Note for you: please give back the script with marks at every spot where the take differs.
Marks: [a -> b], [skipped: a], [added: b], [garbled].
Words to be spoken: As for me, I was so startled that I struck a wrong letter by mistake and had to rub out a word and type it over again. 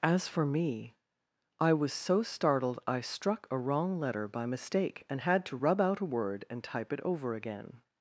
As for me, I was so startled [skipped: that] I struck a wrong letter by mistake and had to rub out a word and type it over again.